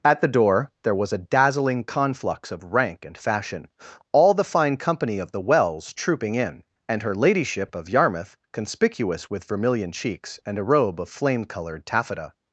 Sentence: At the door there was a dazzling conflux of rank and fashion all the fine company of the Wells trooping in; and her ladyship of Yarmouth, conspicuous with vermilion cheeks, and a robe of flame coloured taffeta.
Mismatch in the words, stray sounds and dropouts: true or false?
false